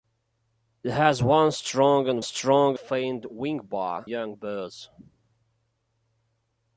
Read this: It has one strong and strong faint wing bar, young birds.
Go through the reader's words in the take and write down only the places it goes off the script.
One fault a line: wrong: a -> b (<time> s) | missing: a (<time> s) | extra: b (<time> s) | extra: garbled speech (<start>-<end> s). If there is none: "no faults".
no faults